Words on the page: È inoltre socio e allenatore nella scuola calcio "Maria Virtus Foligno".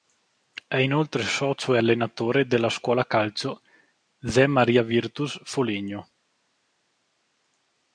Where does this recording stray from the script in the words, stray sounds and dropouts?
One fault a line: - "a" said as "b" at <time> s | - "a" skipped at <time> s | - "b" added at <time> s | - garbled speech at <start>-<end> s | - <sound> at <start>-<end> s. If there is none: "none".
- "nella" said as "della" at 2.5 s
- "Zé" added at 4.2 s